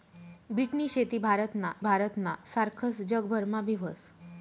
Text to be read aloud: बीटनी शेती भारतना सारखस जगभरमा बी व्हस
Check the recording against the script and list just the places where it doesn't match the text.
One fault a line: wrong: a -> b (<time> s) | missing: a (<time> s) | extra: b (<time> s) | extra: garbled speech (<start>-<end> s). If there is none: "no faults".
extra: भारतना (1.8 s)